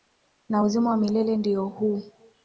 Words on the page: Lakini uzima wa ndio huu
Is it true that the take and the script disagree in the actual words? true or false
true